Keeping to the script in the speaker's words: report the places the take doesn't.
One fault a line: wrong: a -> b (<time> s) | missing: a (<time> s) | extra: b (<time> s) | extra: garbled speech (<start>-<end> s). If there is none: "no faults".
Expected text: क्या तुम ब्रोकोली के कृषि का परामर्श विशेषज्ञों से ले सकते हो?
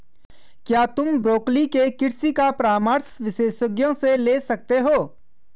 no faults